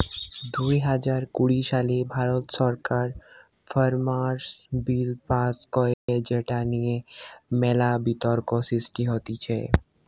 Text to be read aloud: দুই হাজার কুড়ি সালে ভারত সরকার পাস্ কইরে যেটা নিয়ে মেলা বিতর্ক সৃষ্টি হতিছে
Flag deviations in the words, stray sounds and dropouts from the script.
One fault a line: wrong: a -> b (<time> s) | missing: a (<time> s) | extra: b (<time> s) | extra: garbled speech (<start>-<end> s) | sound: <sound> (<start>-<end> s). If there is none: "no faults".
extra: ফার্মার্স বিল (3.7 s)
sound: dropout (5.9-6.1 s)